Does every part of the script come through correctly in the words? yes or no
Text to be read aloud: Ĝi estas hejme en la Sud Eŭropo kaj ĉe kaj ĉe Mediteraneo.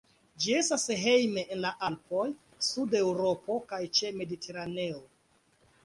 no